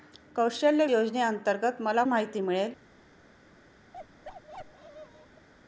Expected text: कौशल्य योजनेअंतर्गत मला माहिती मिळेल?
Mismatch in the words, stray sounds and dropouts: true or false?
true